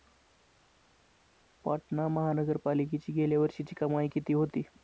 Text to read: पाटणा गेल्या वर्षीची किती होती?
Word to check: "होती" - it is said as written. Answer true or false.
true